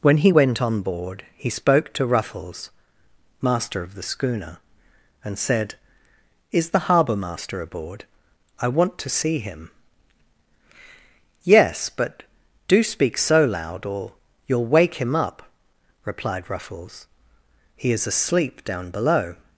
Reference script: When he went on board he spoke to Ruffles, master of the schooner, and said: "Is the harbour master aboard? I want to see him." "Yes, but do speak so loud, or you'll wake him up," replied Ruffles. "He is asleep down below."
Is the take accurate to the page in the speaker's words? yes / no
yes